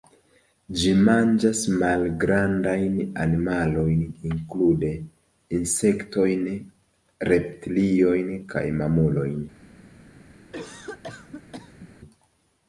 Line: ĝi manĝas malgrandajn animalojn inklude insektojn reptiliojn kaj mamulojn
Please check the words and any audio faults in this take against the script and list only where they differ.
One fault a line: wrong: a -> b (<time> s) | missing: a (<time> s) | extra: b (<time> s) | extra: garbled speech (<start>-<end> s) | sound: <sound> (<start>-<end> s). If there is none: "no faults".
sound: cough (10.5-11.9 s)